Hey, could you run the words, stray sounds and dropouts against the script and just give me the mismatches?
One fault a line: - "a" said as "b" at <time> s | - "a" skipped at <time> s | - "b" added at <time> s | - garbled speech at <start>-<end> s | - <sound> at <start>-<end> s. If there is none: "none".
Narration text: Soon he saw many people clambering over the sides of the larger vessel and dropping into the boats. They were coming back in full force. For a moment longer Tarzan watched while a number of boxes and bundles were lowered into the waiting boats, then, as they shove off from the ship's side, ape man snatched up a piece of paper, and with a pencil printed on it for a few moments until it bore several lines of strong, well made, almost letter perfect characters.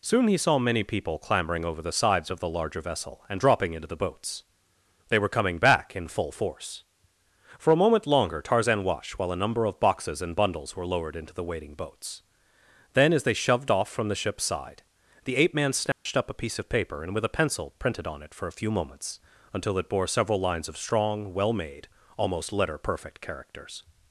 - "shove" said as "shoved" at 13.3 s
- "the" added at 15.2 s
- dropout at 15.9-16.1 s